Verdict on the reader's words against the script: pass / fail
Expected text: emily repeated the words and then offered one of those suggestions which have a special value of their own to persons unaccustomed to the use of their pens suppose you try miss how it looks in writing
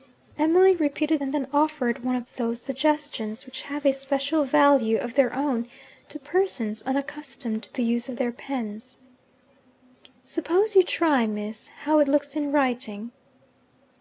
fail